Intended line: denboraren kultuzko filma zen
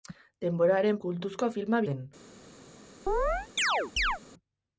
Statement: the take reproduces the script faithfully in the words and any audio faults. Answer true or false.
false